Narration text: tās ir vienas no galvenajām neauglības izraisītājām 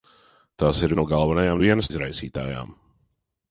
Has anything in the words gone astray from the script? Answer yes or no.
yes